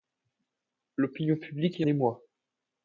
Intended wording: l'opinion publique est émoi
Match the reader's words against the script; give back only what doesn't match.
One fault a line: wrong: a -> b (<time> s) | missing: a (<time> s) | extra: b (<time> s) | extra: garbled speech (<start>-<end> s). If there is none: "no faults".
no faults